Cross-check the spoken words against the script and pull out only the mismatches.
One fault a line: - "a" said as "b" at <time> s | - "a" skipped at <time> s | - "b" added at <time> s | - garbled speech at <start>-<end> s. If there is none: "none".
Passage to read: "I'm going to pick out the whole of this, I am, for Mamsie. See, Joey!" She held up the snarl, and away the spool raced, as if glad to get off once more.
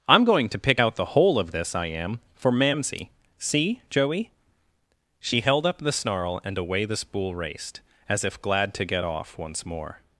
none